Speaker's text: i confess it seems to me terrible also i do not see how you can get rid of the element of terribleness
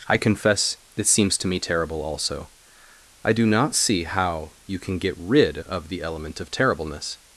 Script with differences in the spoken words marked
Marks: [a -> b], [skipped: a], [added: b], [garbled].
i confess [it -> this] seems to me terrible also i do not see how you can get rid of the element of terribleness